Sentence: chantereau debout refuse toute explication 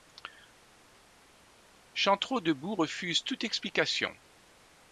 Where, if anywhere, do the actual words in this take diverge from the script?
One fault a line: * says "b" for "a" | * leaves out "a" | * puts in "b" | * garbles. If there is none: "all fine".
all fine